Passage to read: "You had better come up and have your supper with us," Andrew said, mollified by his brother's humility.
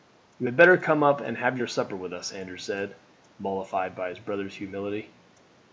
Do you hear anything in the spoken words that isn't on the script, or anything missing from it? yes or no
no